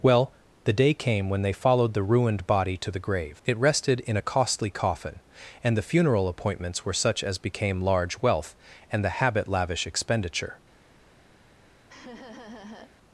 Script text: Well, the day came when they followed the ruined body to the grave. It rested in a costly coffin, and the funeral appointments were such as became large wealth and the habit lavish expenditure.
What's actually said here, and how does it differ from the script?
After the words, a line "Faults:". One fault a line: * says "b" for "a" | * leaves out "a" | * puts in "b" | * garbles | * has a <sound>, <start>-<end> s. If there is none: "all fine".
Well, the day came when they followed the ruined body to the grave. It rested in a costly coffin, and the funeral appointments were such as became large wealth and the habit lavish expenditure.
Faults:
* has a laugh, 11.9-12.9 s